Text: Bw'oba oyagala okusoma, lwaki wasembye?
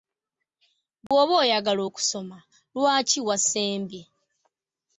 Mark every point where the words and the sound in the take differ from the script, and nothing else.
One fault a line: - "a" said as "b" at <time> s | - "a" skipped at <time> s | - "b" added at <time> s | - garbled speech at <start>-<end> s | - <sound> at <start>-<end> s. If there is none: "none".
- dropout at 1.1-1.1 s